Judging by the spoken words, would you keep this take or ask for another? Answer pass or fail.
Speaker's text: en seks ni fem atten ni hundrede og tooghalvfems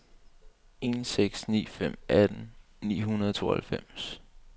pass